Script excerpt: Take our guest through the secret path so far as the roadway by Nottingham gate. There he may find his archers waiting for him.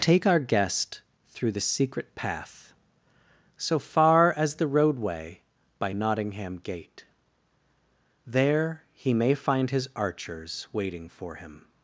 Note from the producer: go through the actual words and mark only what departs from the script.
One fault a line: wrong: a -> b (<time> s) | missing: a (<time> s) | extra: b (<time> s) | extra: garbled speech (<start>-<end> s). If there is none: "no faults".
no faults